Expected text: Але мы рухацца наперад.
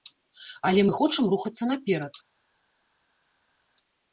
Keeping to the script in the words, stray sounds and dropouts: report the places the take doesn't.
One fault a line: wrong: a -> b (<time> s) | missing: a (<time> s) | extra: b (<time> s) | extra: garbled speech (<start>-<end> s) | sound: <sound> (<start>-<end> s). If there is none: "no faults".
extra: хочам (1.0 s)